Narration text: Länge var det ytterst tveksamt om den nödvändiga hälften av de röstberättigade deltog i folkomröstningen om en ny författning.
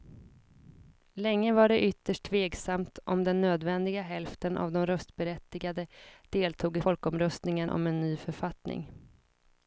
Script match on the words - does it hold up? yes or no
yes